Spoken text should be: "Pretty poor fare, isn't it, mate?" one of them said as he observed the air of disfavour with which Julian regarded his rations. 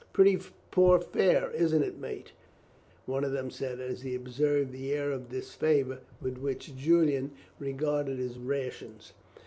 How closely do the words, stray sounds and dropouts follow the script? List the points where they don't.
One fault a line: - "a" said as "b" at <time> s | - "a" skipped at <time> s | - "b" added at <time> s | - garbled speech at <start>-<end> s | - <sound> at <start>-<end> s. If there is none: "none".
none